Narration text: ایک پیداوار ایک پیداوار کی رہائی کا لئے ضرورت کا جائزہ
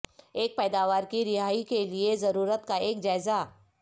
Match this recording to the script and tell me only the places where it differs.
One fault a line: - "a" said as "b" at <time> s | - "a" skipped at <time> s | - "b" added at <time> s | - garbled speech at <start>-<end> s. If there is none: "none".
- "ایک پیداوار" skipped at 1.0 s
- "کا" said as "کے" at 1.6 s
- "ایک" added at 2.8 s